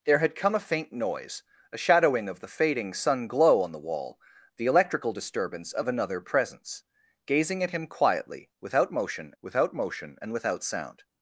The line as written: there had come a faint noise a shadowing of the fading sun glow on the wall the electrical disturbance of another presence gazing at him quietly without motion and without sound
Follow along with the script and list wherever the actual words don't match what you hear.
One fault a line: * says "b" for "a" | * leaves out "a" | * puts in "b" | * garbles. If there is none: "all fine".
* puts in "without motion"